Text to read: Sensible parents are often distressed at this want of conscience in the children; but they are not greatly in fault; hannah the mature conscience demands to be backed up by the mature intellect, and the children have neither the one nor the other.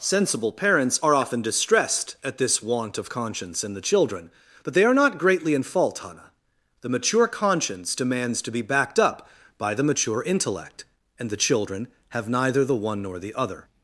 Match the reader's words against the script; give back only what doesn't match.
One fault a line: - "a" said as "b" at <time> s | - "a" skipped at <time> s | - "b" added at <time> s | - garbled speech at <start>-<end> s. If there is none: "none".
none